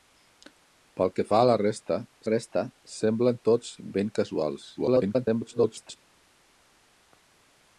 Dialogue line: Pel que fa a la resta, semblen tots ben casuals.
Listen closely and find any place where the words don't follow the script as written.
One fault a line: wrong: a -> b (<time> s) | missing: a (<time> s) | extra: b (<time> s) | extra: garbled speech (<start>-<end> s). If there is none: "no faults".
extra: resta (2.3 s)
extra: garbled speech (4.8-6.0 s)